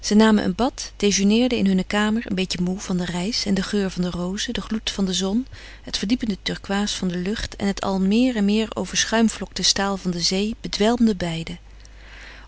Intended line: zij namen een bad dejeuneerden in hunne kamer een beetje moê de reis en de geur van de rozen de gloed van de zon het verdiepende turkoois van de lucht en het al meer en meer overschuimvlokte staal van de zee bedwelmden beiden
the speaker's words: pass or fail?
fail